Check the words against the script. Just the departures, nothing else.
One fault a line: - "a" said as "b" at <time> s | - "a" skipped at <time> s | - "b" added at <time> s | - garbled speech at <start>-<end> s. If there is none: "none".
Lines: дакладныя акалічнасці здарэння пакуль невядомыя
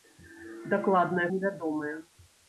- "акалічнасці здарэння пакуль" skipped at 1.3 s